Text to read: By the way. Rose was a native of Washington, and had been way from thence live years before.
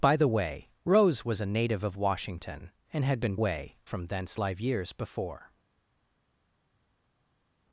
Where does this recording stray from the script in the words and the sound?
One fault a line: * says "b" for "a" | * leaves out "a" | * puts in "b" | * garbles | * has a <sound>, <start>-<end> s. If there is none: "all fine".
all fine